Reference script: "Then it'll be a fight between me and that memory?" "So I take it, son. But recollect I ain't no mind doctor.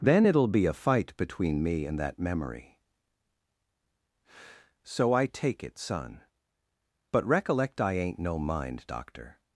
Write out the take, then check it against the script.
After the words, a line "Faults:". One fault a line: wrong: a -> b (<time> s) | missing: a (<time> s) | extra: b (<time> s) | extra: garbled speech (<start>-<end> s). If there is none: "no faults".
"Then it'll be a fight between me and that memory?" "So I take it, son. But recollect I ain't no mind doctor.
Faults:
no faults